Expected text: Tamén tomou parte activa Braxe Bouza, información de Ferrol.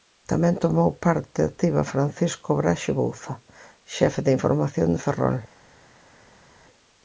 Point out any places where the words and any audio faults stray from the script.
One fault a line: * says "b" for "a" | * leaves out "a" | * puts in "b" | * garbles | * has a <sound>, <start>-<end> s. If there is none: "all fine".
* puts in "Francisco"
* puts in "xefe de"